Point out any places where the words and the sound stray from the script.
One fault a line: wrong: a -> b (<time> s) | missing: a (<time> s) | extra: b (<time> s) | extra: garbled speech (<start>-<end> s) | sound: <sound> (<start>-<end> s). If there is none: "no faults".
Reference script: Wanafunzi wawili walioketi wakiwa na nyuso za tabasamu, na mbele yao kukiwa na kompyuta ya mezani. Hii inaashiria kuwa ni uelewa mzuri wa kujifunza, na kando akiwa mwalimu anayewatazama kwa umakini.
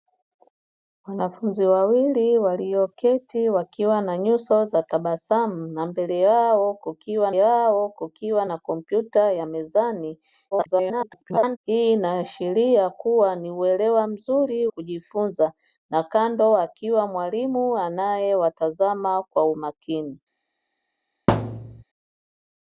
extra: yao kukiwa (7.3 s)
extra: garbled speech (10.5-11.6 s)
missing: wa (14.7 s)
sound: thud (21.3-21.8 s)